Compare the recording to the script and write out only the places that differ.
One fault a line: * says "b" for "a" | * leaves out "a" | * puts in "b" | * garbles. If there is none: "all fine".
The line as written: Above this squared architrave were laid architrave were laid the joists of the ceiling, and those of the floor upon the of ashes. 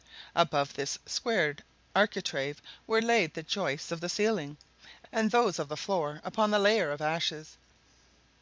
* leaves out "architrave were laid"
* puts in "layer"